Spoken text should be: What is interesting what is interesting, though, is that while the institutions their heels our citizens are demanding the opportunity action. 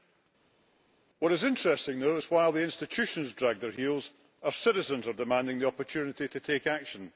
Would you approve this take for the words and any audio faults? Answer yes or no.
no